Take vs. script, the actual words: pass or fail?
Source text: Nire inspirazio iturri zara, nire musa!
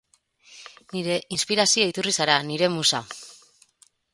pass